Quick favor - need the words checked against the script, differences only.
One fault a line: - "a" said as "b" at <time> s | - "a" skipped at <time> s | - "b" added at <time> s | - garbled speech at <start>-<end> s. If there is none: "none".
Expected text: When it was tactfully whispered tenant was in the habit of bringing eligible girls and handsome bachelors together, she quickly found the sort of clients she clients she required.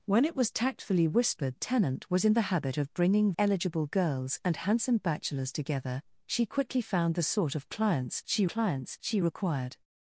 none